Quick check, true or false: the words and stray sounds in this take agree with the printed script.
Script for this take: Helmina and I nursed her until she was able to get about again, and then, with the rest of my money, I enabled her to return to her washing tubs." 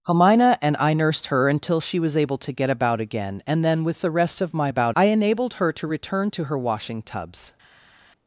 false